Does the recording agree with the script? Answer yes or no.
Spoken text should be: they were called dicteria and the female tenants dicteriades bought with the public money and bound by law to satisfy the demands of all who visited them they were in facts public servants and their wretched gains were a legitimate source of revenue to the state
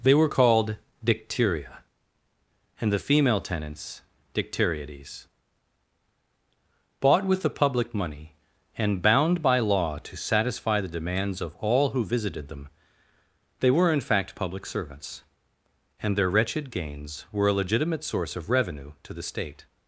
no